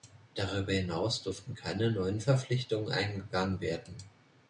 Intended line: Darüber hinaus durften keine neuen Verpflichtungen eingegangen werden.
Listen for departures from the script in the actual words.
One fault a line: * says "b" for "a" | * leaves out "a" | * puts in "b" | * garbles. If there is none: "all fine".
all fine